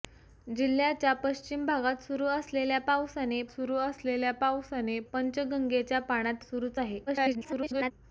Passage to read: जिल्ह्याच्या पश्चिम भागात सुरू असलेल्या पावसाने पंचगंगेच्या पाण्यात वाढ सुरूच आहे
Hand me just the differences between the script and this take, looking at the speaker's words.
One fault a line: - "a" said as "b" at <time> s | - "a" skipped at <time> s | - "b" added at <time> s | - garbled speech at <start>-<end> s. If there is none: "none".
- "सुरू असलेल्या पावसाने" added at 3.5 s
- "वाढ" skipped at 6.4 s
- garbled speech at 7.1-7.9 s